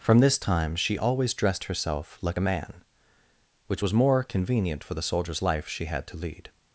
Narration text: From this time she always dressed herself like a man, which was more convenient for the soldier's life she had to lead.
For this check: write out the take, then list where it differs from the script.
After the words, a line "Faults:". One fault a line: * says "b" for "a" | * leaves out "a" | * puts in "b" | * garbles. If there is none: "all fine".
From this time she always dressed herself like a man, which was more convenient for the soldier's life she had to lead.
Faults:
all fine